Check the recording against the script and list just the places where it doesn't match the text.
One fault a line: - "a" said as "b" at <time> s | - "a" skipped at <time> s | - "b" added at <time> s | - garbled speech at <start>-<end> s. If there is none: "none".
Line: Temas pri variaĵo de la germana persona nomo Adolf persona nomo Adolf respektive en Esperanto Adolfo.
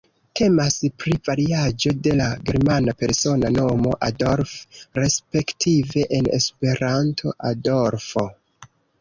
- "persona nomo Adolf" skipped at 4.6 s